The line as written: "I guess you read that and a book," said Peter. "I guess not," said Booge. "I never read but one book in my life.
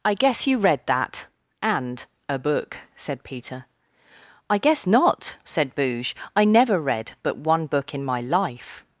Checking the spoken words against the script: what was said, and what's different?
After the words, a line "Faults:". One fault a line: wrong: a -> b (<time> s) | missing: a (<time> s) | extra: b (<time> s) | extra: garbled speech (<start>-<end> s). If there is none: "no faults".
"I guess you read that and a book," said Peter. "I guess not," said Booge. "I never read but one book in my life.
Faults:
no faults